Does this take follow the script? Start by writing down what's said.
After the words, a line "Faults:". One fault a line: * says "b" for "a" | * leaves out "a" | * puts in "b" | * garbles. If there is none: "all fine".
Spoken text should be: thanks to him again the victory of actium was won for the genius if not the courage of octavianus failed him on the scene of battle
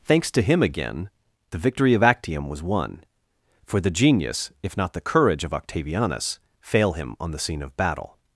thanks to him again the victory of actium was won for the genius if not the courage of octavianus fail him on the scene of battle
Faults:
* says "fail" for "failed"